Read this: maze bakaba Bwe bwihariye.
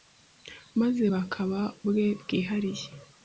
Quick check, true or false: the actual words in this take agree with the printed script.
true